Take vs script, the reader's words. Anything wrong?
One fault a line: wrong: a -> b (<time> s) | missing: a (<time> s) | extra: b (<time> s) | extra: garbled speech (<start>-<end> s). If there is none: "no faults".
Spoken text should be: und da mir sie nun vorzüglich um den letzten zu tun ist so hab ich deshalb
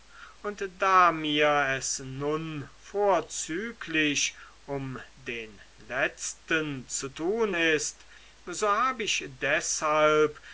wrong: sie -> es (1.8 s)